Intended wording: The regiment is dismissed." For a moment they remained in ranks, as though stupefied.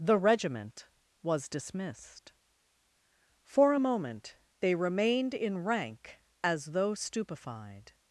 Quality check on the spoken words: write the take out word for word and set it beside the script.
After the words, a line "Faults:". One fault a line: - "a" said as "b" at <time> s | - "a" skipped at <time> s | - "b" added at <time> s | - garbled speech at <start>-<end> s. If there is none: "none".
The regiment was dismissed." For a moment they remained in rank, as though stupefied.
Faults:
- "is" said as "was" at 1.2 s
- "ranks" said as "rank" at 5.6 s